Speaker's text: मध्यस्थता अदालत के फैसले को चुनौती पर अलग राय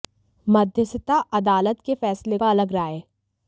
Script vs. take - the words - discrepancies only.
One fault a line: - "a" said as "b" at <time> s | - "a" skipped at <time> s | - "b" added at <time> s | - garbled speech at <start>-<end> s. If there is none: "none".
- "को चुनौती" skipped at 2.4 s